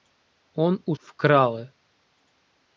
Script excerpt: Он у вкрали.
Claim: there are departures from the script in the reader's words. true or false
false